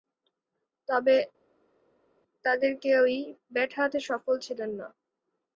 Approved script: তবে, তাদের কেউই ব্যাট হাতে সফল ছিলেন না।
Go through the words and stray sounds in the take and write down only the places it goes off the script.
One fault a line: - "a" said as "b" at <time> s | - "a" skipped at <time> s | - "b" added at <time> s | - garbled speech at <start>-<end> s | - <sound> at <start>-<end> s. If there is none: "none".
none